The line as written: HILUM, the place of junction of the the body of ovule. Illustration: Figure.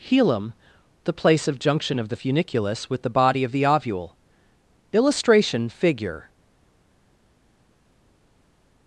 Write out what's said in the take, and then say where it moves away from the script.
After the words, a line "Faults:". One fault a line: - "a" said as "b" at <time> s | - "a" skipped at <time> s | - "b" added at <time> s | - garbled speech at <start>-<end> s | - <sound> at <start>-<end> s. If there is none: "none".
HILUM, the place of junction of the funiculus with the body of the ovule. Illustration: Figure.
Faults:
- "funiculus with" added at 2.1 s
- "the" added at 3.5 s